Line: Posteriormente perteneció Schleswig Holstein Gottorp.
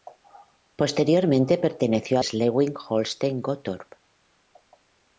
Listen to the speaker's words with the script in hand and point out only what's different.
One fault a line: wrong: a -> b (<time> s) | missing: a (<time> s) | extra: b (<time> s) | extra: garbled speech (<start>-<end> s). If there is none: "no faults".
no faults